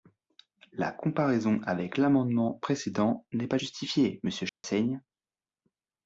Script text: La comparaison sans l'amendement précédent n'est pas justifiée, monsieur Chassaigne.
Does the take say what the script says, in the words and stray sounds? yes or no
no